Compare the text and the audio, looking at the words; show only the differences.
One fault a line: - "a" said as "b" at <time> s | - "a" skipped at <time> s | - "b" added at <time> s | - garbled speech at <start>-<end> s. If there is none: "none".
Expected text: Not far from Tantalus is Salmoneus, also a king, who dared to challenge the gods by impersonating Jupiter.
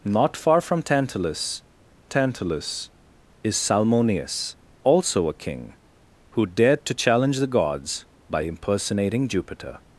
- "Tantalus" added at 2.1 s